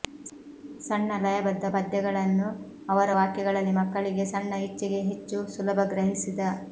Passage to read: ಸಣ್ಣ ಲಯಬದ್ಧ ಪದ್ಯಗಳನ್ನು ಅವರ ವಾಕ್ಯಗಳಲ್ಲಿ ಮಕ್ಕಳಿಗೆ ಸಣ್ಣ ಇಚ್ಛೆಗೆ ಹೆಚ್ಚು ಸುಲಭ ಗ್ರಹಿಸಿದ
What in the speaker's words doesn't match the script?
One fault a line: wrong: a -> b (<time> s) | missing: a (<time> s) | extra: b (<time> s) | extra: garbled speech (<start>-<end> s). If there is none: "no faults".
no faults